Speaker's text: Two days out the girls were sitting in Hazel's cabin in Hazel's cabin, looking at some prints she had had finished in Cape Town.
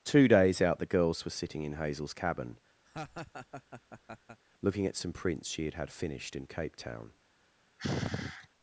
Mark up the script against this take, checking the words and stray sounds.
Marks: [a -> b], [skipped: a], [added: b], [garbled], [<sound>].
Two days out the girls were sitting in Hazel's cabin [skipped: in Hazel's cabin,] [laugh] looking at some prints she had had finished in Cape Town. [sigh]